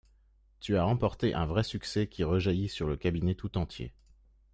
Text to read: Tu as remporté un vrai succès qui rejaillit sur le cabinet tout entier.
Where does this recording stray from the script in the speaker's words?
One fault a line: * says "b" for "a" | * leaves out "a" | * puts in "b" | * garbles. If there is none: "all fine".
all fine